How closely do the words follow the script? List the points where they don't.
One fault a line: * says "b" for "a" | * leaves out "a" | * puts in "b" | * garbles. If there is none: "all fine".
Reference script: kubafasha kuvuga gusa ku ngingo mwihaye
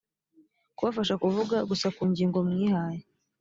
all fine